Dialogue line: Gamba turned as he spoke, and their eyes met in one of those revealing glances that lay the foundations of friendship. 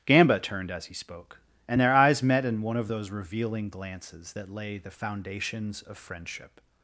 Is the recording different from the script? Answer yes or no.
no